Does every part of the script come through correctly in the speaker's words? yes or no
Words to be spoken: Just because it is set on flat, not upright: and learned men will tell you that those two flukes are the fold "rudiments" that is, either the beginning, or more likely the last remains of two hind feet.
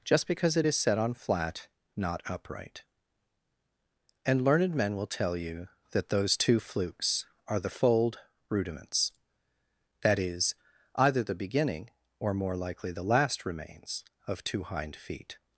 yes